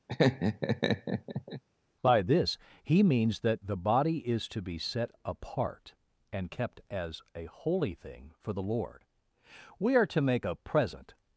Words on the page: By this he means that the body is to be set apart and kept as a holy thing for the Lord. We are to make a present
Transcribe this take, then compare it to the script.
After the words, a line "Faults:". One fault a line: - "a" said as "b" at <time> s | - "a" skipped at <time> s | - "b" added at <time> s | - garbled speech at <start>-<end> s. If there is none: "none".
By this he means that the body is to be set apart and kept as a holy thing for the Lord. We are to make a present
Faults:
none